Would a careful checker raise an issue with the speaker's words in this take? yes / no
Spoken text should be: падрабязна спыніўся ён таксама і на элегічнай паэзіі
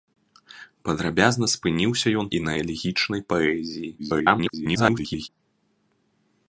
yes